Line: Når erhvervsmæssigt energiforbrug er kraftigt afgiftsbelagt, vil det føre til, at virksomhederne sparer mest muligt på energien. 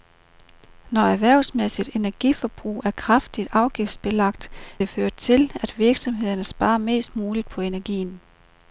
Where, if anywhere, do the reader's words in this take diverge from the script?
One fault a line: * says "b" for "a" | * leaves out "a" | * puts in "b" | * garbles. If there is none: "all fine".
* leaves out "vil"